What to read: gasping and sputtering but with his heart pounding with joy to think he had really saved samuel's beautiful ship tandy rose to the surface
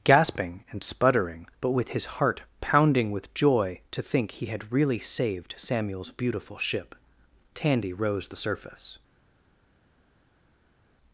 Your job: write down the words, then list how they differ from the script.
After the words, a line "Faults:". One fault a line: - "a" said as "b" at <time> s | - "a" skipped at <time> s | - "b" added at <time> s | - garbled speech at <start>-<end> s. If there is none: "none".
gasping and sputtering but with his heart pounding with joy to think he had really saved samuel's beautiful ship tandy rose the surface
Faults:
- "to" skipped at 8.3 s